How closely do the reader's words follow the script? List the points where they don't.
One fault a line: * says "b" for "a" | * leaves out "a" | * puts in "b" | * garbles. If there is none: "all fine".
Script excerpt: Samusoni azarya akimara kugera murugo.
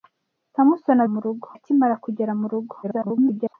* says "murugo" for "azarya"
* garbles